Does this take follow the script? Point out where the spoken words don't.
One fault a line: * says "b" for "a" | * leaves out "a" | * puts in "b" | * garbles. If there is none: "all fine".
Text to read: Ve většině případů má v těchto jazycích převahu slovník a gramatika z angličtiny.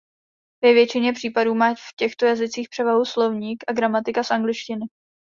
all fine